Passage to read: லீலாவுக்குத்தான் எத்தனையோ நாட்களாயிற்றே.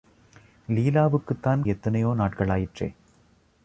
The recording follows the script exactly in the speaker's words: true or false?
true